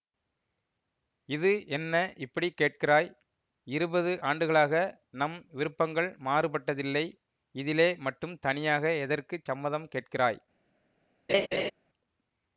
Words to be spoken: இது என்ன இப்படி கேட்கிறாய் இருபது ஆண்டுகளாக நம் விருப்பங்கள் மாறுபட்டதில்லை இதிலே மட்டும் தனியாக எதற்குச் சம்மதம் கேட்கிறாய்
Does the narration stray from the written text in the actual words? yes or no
no